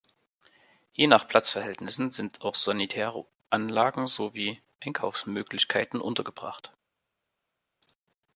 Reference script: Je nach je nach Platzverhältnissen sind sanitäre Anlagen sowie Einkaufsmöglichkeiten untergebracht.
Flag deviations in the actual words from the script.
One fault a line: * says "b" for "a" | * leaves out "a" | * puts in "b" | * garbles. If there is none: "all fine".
* leaves out "je nach"
* puts in "auch"